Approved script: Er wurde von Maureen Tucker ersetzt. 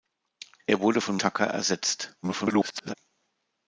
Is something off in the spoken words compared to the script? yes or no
yes